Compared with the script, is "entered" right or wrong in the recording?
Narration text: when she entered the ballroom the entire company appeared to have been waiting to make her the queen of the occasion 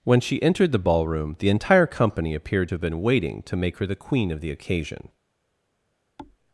right